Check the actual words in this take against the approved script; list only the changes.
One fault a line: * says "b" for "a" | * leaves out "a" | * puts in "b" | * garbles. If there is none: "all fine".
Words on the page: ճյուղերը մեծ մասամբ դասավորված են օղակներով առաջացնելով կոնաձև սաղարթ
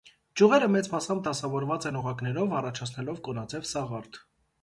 all fine